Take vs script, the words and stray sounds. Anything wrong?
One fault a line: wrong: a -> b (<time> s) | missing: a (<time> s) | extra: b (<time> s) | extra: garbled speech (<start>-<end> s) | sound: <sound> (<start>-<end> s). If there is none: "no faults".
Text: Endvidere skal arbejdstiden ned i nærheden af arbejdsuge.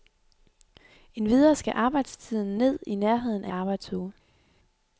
no faults